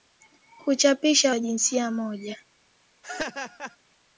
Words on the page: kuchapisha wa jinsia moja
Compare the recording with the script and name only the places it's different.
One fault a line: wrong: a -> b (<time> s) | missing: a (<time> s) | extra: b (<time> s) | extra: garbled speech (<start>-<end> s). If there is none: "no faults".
no faults